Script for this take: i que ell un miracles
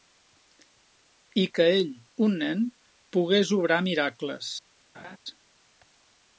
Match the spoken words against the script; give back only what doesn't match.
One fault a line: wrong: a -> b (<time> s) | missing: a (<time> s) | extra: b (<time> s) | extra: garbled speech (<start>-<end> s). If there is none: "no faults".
extra: nen pogués obrar (2.4 s)